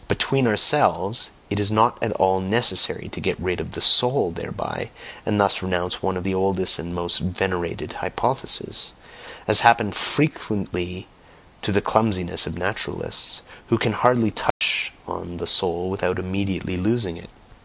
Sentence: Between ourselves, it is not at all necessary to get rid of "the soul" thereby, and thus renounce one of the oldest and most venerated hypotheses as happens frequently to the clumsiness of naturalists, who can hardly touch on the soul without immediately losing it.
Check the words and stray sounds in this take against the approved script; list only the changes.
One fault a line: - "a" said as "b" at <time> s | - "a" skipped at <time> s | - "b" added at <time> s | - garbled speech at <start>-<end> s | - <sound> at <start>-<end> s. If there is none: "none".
- dropout at 14.5-14.6 s